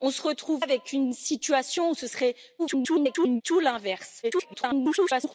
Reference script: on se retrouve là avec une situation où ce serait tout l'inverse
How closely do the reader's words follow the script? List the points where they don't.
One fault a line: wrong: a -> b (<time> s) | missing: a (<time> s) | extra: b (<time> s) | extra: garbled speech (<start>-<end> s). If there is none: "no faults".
missing: là (0.7 s)
extra: garbled speech (2.6-3.4 s)
extra: garbled speech (4.2-5.3 s)